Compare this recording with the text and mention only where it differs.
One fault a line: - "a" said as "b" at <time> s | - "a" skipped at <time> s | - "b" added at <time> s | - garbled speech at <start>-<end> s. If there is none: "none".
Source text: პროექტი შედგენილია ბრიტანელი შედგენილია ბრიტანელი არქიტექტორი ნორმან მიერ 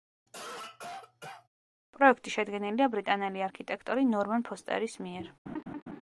- "შედგენილია ბრიტანელი" skipped at 3.4 s
- "ფოსტერის" added at 4.5 s